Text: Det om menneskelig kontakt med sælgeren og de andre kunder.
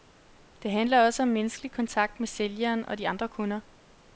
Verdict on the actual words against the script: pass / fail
fail